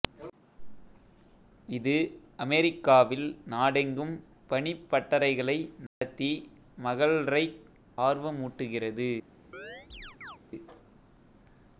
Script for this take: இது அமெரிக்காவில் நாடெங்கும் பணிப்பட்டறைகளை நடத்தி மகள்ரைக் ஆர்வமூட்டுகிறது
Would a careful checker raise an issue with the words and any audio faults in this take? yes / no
yes